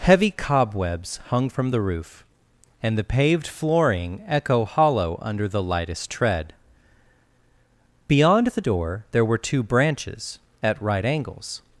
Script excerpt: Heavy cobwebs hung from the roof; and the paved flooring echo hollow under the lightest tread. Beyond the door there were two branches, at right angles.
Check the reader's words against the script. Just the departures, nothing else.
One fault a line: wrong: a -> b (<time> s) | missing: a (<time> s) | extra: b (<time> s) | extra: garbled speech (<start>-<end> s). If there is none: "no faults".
no faults